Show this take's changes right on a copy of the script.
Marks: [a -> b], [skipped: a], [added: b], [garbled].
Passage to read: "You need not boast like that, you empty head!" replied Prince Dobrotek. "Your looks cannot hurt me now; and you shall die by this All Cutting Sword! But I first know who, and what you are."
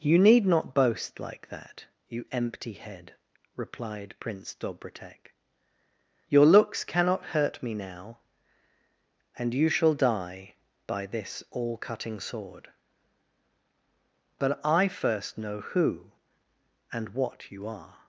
"You need not boast like that, you empty head!" replied Prince Dobrotek. "Your looks cannot hurt me now; and you shall die by this All Cutting Sword! But I first know who, and what you are."